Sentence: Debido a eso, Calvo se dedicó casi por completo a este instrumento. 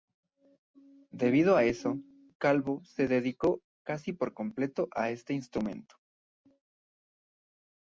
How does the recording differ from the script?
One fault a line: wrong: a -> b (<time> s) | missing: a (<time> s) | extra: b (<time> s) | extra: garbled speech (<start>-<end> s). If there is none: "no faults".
no faults